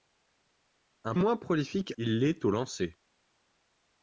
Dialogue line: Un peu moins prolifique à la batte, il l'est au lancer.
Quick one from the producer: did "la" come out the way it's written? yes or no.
no